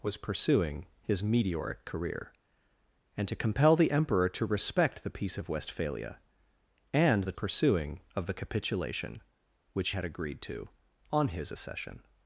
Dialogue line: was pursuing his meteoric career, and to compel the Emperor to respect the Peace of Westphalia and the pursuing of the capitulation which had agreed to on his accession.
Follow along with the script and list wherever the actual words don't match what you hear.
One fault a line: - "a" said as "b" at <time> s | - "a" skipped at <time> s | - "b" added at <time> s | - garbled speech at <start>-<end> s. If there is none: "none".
none